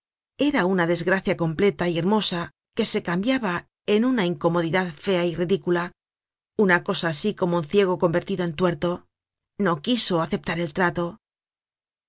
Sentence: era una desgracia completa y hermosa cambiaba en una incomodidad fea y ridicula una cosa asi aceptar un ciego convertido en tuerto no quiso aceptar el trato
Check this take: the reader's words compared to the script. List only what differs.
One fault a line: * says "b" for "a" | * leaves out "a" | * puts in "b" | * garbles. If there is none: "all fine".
* puts in "que se"
* says "como" for "aceptar"